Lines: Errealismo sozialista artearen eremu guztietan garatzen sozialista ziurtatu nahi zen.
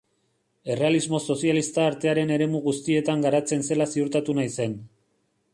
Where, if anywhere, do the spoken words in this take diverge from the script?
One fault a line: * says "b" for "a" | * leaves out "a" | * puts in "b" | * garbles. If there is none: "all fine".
* says "zela" for "sozialista"